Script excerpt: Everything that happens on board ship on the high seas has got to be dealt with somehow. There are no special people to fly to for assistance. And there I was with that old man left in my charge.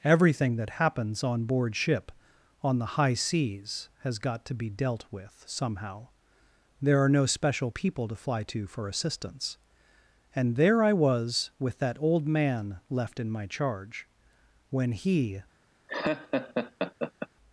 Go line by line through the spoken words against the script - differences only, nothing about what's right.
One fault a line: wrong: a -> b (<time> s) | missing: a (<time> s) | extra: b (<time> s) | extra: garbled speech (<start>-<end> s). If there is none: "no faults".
extra: When he (14.7 s)